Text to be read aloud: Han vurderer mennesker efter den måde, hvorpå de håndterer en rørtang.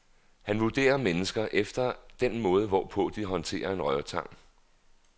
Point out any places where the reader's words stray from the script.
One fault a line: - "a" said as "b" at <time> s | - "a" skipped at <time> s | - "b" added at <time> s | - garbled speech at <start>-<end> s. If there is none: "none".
none